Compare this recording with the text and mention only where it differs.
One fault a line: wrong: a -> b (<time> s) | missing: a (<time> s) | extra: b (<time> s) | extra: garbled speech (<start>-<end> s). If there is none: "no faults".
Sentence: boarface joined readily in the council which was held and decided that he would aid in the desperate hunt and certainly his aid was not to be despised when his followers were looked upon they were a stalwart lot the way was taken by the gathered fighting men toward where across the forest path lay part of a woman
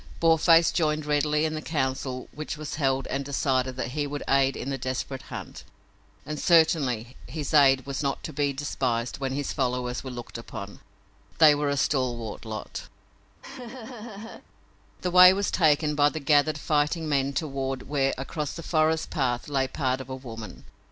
no faults